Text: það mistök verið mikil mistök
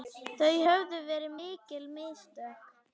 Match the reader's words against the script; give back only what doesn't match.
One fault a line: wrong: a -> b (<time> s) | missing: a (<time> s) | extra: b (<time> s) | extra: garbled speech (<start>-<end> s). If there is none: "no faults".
wrong: mistök -> höfðu (0.7 s)